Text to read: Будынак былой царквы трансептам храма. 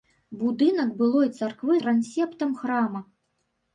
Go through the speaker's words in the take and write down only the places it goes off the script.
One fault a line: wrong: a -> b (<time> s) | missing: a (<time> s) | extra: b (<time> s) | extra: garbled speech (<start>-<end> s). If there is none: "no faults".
no faults